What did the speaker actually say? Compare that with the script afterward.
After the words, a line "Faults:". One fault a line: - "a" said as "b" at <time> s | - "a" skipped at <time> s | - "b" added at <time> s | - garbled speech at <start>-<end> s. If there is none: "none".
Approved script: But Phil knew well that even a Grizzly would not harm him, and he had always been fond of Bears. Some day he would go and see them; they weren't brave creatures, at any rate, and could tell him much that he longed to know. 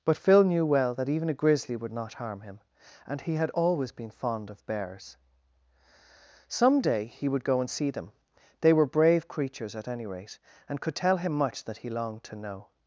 But Phil knew well that even a Grizzly would not harm him, and he had always been fond of Bears. Some day he would go and see them; they were brave creatures, at any rate, and could tell him much that he longed to know.
Faults:
- "weren't" said as "were" at 8.7 s